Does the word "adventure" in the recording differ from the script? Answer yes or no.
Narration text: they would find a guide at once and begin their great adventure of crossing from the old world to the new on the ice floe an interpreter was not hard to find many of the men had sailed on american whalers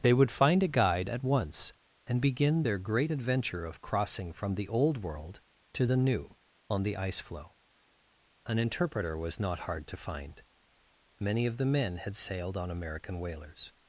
no